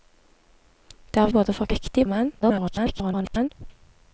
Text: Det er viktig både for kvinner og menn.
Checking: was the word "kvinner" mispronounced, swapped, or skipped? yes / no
yes